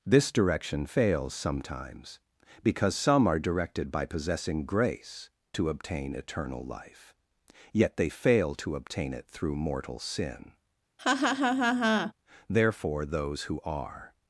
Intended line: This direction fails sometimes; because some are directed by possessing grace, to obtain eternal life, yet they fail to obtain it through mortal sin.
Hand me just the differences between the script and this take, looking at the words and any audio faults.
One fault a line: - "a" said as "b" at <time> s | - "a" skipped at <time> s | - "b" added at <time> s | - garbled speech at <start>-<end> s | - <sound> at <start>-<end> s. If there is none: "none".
- laugh at 11.0-12.1 s
- "Therefore those who are" added at 12.5 s